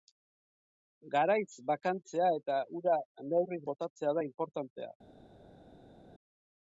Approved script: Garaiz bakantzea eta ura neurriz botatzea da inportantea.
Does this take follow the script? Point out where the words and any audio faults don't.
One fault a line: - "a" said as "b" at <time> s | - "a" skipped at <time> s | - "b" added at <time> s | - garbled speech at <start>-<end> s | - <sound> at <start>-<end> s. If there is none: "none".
none